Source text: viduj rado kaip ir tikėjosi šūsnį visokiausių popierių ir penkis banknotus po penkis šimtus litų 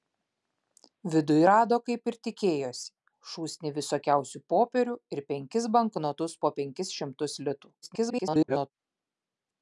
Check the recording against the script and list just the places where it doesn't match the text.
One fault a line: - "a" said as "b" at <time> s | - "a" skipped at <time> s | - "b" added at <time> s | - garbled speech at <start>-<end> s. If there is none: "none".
- garbled speech at 7.8-8.7 s